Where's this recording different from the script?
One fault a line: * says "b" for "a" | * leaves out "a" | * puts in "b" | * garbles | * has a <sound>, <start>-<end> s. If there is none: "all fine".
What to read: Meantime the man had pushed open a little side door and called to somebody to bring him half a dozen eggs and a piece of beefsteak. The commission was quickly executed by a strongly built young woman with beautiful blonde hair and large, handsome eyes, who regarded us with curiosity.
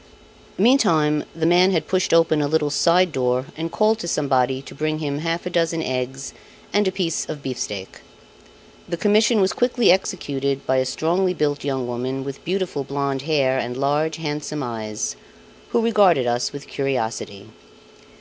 all fine